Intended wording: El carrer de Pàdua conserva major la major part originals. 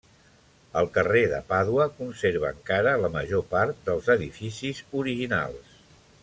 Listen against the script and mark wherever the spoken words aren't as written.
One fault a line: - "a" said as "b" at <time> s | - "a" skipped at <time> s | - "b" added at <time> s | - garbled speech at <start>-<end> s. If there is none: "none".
- "major" said as "encara" at 2.6 s
- "dels edificis" added at 3.9 s